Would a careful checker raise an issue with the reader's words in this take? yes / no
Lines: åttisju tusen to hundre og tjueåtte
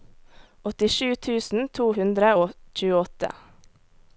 no